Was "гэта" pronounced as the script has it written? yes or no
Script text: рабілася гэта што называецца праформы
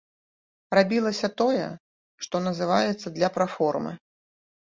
no